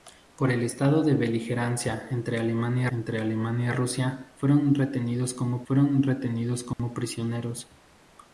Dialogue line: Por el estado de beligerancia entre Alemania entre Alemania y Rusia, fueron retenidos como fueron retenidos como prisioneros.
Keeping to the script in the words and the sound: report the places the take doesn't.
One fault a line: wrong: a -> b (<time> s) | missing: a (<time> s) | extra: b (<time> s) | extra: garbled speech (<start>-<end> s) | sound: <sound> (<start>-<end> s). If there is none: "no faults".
sound: dropout (6.7-6.8 s)